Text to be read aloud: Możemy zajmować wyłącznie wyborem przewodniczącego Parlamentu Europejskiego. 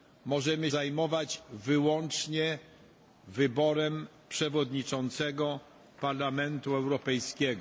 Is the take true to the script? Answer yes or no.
yes